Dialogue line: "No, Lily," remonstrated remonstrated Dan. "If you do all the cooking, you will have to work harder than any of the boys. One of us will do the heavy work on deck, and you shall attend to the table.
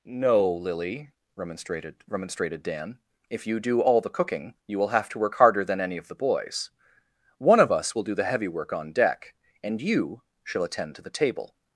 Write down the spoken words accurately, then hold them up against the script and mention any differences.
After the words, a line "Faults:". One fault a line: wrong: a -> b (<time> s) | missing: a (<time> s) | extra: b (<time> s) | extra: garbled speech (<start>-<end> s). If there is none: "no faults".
"No, Lily," remonstrated remonstrated Dan. "If you do all the cooking, you will have to work harder than any of the boys. One of us will do the heavy work on deck, and you shall attend to the table.
Faults:
no faults